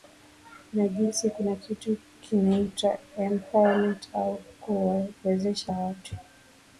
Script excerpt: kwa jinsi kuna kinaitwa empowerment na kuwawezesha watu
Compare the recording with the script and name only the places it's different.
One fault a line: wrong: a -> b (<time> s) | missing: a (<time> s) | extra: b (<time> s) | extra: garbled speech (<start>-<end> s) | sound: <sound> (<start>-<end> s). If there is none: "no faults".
wrong: kwa -> na (0.7 s)
extra: kitu (1.6 s)
wrong: na -> au (4.1 s)